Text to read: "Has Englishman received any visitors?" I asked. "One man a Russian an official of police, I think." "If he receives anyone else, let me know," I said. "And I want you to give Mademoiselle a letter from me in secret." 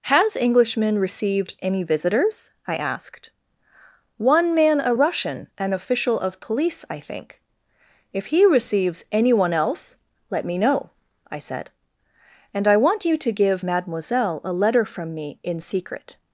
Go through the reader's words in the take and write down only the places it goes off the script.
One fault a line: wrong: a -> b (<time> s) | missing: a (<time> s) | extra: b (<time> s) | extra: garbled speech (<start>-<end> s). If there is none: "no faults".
no faults